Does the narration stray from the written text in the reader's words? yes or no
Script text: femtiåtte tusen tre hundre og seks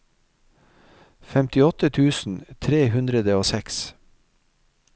no